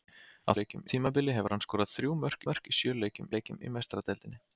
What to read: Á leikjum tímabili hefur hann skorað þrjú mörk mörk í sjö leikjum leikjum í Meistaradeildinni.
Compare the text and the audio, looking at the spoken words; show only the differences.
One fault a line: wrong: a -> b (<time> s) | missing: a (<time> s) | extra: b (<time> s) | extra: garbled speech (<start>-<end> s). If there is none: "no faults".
no faults